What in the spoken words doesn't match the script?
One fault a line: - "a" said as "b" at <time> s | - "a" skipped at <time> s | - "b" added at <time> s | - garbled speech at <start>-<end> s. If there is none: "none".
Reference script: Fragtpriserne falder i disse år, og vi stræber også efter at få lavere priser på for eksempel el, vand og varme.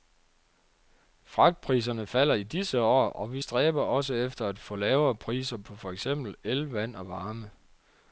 none